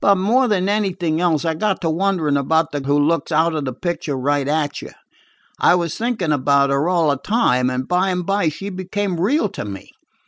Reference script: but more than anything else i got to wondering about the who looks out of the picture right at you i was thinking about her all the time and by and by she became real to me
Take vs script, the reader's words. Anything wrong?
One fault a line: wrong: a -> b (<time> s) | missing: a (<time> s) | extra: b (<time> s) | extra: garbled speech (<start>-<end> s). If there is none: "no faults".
no faults